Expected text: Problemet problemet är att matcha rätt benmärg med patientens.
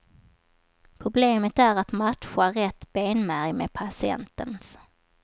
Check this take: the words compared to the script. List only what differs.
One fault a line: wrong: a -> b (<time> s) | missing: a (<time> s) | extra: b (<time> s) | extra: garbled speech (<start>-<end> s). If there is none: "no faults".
missing: problemet (1.6 s)